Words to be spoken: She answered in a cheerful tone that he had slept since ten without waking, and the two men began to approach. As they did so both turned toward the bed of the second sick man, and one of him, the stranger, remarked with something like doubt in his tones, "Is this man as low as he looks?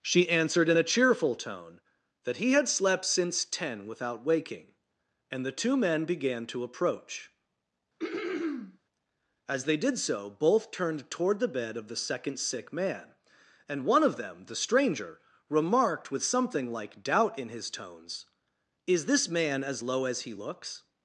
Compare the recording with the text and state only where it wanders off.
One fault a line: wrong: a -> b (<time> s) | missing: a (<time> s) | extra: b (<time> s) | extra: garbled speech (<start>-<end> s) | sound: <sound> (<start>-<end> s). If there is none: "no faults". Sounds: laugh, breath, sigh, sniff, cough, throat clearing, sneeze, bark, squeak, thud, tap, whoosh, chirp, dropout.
sound: throat clearing (8.0-8.8 s)
wrong: him -> them (14.2 s)